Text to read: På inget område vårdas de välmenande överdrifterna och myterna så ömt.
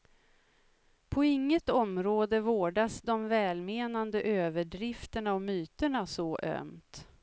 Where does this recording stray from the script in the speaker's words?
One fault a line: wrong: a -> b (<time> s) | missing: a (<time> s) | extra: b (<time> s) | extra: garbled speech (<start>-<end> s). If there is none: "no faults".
no faults